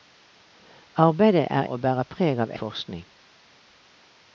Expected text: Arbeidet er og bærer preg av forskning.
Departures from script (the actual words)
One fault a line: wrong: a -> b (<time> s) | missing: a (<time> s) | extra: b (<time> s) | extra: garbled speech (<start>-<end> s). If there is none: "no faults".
no faults